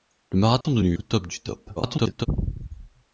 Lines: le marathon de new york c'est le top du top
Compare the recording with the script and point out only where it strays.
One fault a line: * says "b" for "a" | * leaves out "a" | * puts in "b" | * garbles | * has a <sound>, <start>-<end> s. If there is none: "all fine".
* has a dropout, 0.6-0.6 s
* leaves out "york c'est"
* garbles